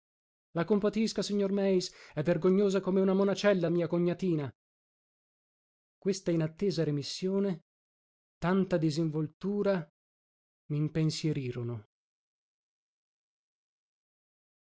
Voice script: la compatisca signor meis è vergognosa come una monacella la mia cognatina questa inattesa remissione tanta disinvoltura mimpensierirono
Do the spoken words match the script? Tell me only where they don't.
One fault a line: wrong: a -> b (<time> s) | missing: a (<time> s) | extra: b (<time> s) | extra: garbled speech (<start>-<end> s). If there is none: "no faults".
no faults